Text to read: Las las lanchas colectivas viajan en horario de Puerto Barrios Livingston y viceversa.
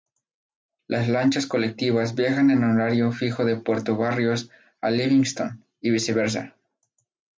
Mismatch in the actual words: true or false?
true